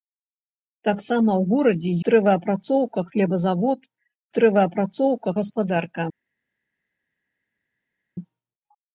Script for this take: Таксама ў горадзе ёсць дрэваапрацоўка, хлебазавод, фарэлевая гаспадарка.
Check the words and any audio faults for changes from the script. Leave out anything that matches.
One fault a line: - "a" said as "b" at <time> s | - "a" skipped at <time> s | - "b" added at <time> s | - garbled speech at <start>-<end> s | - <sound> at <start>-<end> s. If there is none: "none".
- "ёсць" skipped at 1.9 s
- "фарэлевая" said as "дрэваапрацоўка" at 4.4 s